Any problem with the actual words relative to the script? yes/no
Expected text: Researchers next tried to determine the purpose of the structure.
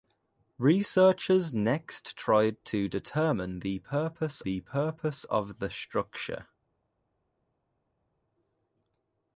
yes